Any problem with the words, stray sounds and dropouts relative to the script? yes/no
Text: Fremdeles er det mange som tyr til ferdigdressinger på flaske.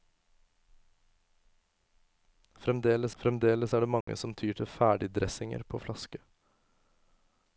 yes